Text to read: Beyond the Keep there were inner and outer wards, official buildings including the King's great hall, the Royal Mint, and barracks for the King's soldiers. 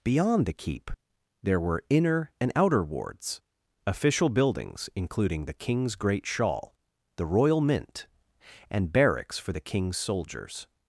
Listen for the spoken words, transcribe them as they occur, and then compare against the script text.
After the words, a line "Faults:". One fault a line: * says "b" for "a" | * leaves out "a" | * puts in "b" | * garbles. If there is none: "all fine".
Beyond the Keep there were inner and outer wards, official buildings including the King's great shawl, the Royal Mint, and barracks for the King's soldiers.
Faults:
* says "shawl" for "hall"